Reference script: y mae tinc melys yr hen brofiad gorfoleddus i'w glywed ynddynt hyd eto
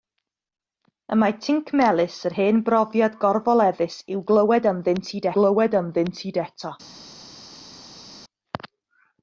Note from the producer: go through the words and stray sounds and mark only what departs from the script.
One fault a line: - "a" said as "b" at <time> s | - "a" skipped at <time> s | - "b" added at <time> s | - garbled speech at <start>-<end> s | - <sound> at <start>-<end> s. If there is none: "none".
- "glywed ynddynt hyd" added at 5.4 s